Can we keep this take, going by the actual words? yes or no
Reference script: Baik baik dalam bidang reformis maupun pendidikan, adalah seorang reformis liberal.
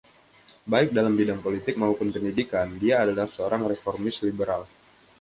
no